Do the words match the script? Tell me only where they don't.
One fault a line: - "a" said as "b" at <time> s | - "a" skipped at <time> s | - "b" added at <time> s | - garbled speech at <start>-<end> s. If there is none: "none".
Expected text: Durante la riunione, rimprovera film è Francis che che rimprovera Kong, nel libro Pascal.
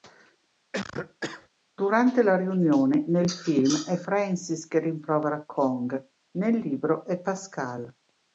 - "rimprovera" said as "nel" at 3.1 s
- "che" skipped at 4.8 s
- "è" added at 7.0 s